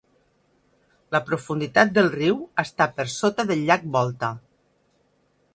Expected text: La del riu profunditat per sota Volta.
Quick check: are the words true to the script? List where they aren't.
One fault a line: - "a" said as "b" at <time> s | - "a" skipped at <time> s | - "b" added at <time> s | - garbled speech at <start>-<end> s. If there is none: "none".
- "profunditat" added at 1.3 s
- "profunditat" said as "està" at 2.6 s
- "del llac" added at 3.5 s